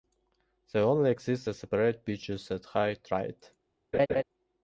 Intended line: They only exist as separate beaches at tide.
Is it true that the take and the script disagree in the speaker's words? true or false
true